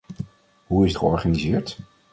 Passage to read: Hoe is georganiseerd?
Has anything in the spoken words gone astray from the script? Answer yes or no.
no